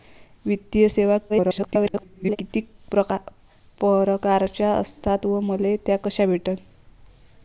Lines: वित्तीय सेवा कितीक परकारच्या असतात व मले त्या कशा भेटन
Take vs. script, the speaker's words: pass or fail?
fail